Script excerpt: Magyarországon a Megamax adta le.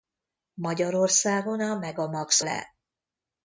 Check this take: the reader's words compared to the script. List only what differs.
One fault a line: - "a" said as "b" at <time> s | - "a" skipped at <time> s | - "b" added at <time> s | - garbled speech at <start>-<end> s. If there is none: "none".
- "adta" skipped at 2.4 s